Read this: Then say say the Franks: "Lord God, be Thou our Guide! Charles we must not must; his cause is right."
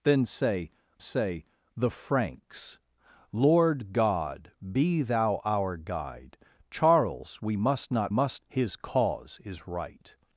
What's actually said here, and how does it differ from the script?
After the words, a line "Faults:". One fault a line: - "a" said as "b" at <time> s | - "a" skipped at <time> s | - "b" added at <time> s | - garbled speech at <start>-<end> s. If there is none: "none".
Then say say the Franks: "Lord God, be Thou our Guide! Charles we must not must; his cause is right."
Faults:
none